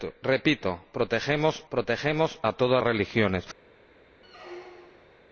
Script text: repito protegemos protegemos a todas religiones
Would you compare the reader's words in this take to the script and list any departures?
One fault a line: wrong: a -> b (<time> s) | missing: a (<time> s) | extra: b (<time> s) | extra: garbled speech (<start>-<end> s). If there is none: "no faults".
no faults